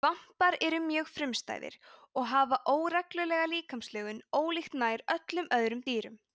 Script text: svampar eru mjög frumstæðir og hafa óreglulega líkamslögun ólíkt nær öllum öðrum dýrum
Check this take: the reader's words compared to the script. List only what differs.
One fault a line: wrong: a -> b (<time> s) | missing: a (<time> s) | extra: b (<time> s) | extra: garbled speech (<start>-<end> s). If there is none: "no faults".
no faults